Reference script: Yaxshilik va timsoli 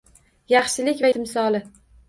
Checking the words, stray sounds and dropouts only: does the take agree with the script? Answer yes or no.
yes